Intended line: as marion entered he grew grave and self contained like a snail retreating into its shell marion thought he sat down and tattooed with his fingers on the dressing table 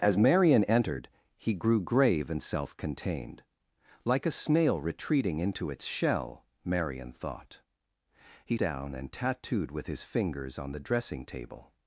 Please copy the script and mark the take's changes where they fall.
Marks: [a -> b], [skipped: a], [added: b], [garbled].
as marion entered he grew grave and self contained like a snail retreating into its shell marion thought he [skipped: sat] down and tattooed with his fingers on the dressing table